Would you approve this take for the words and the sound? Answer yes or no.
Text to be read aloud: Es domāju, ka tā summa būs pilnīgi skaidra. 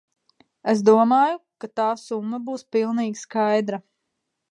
yes